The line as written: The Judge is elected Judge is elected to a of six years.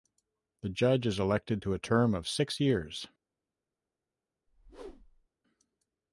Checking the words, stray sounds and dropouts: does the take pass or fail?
fail